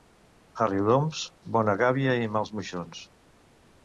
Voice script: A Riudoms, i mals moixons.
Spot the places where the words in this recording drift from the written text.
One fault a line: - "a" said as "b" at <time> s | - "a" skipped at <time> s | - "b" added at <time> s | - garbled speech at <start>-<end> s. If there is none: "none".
- "bona gàbia" added at 1.6 s